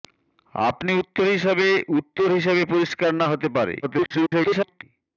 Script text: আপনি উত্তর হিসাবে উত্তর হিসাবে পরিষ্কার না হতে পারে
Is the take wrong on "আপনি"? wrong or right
right